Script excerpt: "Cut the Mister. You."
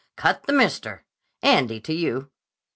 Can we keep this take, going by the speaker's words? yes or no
no